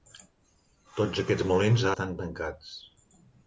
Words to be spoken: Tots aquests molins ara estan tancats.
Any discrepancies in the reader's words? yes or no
yes